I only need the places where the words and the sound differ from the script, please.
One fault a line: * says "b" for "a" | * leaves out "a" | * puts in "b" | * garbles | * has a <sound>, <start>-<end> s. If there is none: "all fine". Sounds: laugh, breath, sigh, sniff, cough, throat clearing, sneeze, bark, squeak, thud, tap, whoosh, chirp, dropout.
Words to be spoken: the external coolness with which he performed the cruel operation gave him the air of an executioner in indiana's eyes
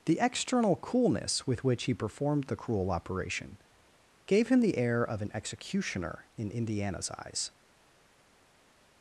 all fine